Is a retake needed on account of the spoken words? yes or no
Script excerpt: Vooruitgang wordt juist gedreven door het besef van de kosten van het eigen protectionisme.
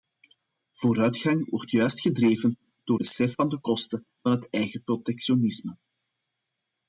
yes